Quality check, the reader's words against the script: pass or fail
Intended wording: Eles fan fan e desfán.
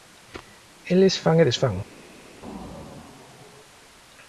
fail